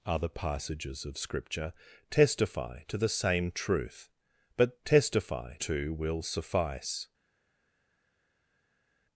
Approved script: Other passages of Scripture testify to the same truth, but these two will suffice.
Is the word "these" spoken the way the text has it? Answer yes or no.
no